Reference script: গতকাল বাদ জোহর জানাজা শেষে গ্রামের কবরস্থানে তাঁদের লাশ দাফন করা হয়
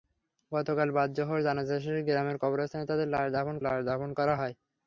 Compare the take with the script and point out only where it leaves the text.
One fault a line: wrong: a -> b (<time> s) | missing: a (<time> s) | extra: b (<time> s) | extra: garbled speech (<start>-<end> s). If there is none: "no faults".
extra: লাশ দাফন (3.6 s)